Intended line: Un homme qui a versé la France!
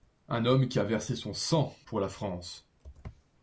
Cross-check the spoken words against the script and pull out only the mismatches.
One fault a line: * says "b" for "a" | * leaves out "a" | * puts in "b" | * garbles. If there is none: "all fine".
* puts in "son sang pour"